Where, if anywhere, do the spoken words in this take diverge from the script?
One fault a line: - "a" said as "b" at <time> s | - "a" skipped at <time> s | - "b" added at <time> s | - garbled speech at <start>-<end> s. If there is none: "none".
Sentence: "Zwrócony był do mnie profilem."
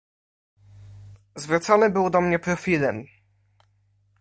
none